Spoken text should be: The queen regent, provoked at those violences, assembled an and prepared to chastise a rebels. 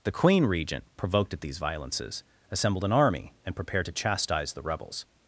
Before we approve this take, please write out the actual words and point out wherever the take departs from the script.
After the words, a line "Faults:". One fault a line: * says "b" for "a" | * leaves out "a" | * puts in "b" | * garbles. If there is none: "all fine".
The queen regent, provoked at these violences, assembled an army, and prepared to chastise the rebels.
Faults:
* says "these" for "those"
* puts in "army"
* says "the" for "a"